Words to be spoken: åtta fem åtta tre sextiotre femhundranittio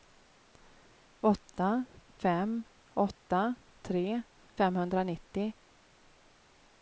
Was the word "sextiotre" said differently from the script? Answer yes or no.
yes